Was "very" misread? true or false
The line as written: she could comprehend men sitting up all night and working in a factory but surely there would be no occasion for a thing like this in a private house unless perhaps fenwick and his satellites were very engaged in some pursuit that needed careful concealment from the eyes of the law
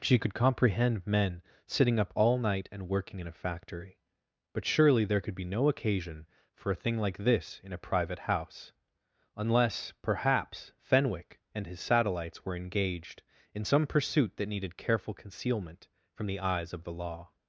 true